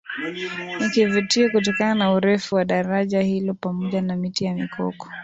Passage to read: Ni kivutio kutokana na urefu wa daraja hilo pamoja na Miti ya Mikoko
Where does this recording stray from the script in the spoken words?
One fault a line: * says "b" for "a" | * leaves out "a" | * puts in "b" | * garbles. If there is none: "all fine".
all fine